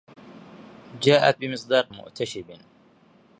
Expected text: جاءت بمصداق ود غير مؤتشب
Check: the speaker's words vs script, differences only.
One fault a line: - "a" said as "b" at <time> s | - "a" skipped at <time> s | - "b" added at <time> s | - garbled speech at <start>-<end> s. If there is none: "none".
- "ود غير" skipped at 1.9 s